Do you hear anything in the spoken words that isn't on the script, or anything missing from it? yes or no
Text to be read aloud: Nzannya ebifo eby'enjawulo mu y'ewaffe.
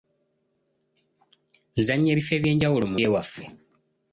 no